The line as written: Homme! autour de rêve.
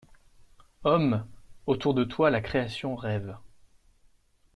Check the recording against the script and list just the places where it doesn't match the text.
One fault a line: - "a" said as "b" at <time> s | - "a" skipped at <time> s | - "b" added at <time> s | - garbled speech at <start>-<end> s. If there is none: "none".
- "toi la création" added at 2.0 s